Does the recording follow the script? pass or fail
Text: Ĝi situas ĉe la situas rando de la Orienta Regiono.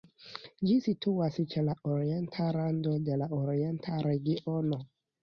fail